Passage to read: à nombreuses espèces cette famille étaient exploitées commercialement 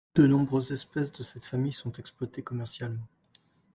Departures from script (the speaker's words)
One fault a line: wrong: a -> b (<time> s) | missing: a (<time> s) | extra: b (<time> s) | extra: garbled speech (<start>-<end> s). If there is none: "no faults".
wrong: à -> de (0.1 s)
extra: de (1.1 s)
wrong: étaient -> sont (1.7 s)